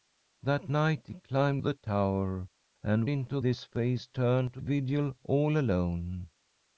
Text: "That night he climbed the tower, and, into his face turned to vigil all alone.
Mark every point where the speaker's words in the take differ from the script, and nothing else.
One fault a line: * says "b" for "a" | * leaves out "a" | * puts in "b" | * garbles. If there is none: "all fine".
all fine